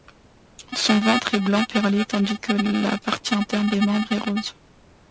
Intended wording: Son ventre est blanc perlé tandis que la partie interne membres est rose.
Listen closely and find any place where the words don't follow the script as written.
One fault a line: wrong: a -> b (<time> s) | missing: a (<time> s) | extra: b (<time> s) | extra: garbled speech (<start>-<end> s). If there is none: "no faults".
extra: des (3.7 s)